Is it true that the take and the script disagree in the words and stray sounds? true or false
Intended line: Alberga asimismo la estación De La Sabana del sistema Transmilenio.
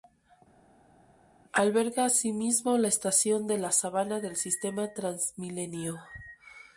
false